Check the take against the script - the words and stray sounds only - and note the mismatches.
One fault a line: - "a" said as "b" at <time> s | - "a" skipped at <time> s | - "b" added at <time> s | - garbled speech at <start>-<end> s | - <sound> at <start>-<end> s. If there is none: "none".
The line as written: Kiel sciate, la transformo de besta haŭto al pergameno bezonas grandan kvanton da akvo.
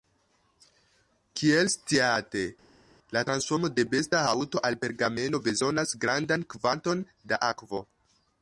none